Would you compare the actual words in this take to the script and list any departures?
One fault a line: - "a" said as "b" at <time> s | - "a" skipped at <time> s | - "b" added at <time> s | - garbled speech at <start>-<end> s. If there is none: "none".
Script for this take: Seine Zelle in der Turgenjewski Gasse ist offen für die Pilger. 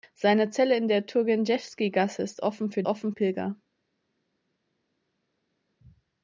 - "die" said as "offen" at 2.8 s